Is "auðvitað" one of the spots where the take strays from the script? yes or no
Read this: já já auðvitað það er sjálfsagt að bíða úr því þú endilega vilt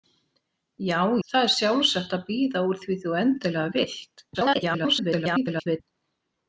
yes